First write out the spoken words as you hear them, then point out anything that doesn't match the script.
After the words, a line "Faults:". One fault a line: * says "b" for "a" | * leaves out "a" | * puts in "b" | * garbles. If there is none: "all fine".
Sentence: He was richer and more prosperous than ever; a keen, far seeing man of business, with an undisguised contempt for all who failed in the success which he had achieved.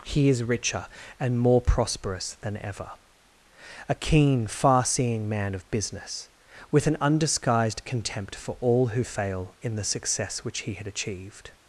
He is richer and more prosperous than ever; a keen, far seeing man of business, with an undisguised contempt for all who fail in the success which he had achieved.
Faults:
* says "is" for "was"
* says "fail" for "failed"